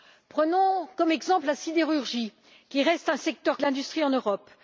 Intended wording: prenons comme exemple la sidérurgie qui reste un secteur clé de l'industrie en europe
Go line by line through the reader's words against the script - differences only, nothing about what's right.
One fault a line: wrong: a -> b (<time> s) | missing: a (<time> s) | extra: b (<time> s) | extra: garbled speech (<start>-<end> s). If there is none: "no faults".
missing: clé (3.6 s)